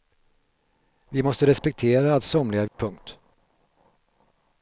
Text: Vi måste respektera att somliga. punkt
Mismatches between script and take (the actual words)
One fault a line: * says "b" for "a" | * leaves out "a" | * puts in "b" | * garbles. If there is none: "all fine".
all fine